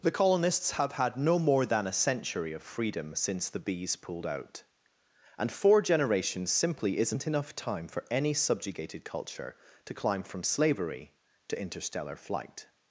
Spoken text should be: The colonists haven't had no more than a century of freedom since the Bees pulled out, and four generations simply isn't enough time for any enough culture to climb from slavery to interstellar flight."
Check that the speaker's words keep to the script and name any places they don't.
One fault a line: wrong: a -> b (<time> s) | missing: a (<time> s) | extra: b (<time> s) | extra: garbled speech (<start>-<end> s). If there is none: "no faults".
wrong: haven't -> have (0.7 s)
wrong: enough -> subjugated (8.3 s)